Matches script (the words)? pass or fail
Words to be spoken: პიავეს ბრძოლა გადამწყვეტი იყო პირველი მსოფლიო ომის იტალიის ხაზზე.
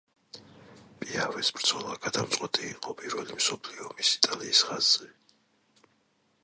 pass